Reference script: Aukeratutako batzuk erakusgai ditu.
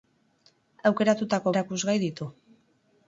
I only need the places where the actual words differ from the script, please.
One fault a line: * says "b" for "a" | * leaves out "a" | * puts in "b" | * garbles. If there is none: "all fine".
* leaves out "batzuk"